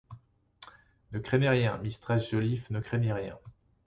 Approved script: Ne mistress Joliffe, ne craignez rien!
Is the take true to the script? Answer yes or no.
no